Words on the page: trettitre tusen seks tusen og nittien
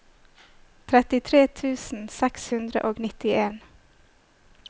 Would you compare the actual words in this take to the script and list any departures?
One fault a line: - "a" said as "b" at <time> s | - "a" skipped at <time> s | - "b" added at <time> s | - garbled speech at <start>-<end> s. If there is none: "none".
- "tusen" said as "hundre" at 2.5 s